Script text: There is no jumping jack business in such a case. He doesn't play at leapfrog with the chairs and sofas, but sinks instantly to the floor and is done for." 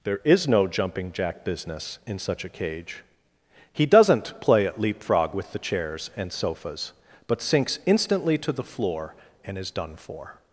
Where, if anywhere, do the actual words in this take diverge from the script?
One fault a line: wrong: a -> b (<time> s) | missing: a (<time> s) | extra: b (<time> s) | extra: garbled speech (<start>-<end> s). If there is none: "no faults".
wrong: case -> cage (2.5 s)